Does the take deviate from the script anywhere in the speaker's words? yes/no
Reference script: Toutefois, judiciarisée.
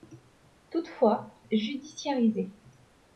no